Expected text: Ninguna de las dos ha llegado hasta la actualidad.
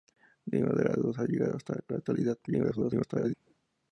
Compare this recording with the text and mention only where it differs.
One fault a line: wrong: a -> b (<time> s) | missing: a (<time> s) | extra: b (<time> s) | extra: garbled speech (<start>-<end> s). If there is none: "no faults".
extra: garbled speech (2.5-3.3 s)